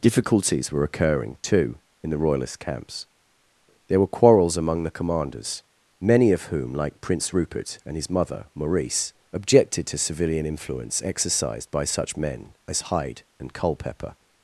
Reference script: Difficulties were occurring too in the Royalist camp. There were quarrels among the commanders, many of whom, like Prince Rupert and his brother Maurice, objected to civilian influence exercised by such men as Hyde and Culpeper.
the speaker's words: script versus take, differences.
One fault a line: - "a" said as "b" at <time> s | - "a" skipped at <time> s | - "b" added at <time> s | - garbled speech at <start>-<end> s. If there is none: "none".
- "camp" said as "camps" at 2.6 s
- "brother" said as "mother" at 8.1 s